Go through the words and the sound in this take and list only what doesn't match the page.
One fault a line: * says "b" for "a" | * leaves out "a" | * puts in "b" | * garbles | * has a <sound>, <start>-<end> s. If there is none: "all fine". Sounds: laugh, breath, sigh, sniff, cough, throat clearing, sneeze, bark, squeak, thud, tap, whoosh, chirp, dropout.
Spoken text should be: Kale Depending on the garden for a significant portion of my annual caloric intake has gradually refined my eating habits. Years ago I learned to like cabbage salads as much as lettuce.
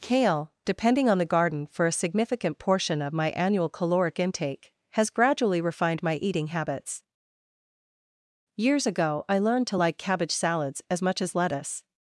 all fine